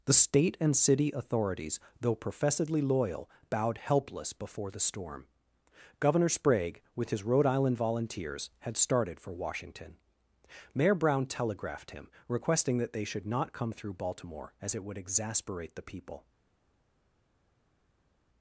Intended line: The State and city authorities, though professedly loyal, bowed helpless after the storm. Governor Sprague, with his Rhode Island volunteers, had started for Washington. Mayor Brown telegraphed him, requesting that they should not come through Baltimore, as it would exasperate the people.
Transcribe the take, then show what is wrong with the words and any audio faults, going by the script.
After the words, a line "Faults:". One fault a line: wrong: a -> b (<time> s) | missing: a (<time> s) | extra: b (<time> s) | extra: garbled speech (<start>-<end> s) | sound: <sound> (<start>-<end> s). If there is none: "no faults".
The State and city authorities, though professedly loyal, bowed helpless before the storm. Governor Sprague, with his Rhode Island volunteers, had started for Washington. Mayor Brown telegraphed him, requesting that they should not come through Baltimore, as it would exasperate the people.
Faults:
wrong: after -> before (4.3 s)